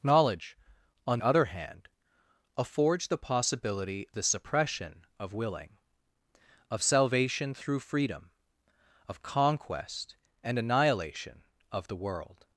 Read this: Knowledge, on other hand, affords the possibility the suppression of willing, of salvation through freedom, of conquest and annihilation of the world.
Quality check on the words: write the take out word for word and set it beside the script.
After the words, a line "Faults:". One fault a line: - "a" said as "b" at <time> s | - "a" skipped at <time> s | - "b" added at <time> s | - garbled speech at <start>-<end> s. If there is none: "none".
Knowledge, on other hand, affords the possibility the suppression of willing, of salvation through freedom, of conquest and annihilation of the world.
Faults:
none